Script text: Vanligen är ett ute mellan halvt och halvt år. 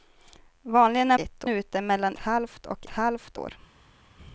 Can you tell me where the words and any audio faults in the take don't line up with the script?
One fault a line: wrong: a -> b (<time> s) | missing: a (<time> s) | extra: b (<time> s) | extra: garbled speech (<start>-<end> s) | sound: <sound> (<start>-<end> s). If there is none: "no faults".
no faults